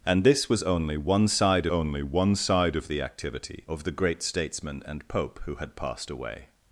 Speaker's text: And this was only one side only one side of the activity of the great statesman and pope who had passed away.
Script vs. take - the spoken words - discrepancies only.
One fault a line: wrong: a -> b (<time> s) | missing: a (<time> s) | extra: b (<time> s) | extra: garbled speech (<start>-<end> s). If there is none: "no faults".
no faults